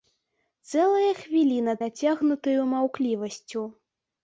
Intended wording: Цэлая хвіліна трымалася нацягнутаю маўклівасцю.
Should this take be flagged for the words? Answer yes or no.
yes